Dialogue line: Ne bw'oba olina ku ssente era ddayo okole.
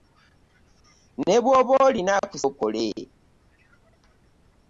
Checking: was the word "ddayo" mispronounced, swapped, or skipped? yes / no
yes